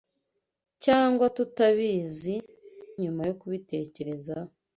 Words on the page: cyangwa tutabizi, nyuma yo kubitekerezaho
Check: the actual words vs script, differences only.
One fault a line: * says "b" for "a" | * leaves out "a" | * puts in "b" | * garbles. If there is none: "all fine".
all fine